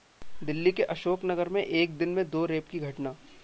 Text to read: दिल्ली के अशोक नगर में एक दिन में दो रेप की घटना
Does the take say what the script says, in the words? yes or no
yes